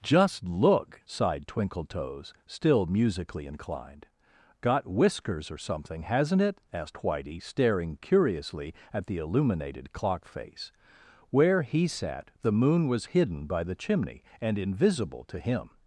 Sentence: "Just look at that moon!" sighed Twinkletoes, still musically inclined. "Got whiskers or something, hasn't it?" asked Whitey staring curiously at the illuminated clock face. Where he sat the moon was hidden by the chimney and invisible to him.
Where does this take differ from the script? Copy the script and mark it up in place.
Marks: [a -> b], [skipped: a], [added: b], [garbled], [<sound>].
"Just look [skipped: at that moon!"] sighed Twinkletoes, still musically inclined. "Got whiskers or something, hasn't it?" asked Whitey staring curiously at the illuminated clock face. Where he sat the moon was hidden by the chimney and invisible to him.